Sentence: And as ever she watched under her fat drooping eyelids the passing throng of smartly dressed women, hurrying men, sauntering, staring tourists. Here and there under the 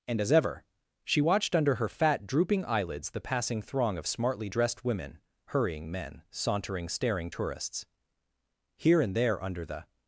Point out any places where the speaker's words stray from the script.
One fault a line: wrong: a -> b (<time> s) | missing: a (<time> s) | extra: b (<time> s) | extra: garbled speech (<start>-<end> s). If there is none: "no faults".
no faults